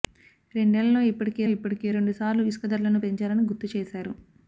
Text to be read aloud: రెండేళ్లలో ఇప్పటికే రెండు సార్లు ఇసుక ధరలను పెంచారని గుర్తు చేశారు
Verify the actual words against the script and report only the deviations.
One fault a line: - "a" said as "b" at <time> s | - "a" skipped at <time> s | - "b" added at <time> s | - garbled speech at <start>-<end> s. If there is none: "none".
- "ఇప్పటికే" added at 1.5 s